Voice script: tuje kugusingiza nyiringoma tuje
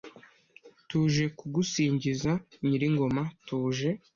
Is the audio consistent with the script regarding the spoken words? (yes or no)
yes